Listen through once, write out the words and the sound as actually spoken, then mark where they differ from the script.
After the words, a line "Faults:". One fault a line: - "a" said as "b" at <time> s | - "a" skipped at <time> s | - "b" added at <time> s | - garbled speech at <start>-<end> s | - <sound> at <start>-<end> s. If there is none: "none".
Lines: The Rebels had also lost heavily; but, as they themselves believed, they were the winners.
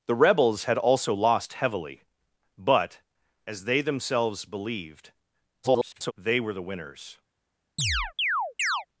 The Rebels had also lost heavily; but, as they themselves believed, [garbled] they were the winners.
Faults:
- garbled speech at 5.6-6.1 s
- chirp at 7.8-8.9 s